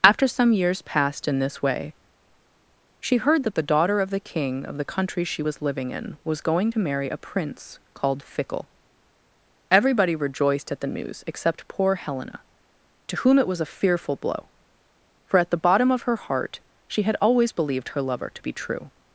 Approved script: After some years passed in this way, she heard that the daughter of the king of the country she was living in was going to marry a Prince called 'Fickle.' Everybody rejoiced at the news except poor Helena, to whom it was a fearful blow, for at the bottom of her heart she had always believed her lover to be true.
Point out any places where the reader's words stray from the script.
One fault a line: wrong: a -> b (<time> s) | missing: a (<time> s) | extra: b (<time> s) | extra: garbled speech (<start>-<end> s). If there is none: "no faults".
no faults